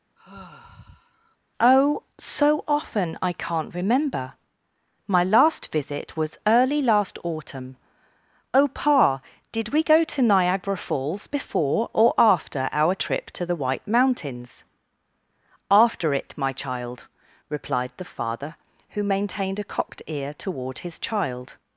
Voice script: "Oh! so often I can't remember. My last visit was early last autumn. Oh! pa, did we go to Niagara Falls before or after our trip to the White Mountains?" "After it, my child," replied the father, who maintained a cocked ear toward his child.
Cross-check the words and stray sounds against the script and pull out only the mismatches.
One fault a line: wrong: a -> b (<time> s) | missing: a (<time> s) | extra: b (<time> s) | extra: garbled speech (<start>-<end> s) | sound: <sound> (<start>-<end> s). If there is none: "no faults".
sound: sigh (0.2-1.4 s)